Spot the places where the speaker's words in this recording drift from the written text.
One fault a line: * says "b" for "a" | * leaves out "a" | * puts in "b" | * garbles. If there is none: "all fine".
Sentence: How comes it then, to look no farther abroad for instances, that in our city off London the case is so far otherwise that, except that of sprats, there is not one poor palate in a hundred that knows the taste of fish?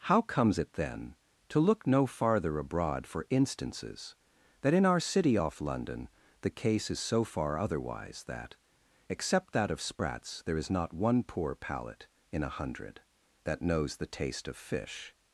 all fine